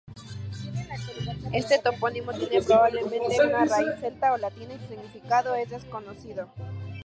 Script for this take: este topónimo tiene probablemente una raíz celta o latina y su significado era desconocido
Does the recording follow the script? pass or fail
fail